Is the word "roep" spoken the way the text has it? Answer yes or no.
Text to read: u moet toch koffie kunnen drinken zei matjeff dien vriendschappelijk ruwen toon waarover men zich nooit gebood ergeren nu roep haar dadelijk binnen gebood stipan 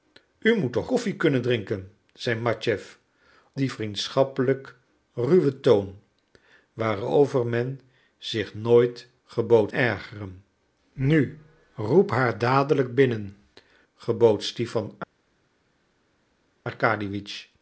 yes